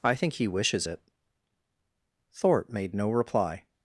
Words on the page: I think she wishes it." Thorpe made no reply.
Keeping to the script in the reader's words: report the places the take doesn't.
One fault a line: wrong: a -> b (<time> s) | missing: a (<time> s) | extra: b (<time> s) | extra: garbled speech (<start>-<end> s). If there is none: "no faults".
wrong: she -> he (0.3 s)